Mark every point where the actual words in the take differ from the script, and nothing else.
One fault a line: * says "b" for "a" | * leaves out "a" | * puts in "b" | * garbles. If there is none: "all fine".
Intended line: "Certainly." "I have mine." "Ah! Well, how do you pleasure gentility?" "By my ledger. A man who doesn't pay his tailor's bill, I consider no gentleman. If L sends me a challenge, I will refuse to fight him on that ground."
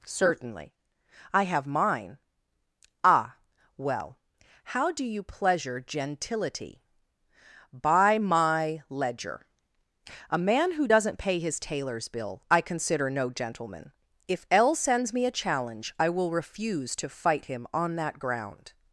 all fine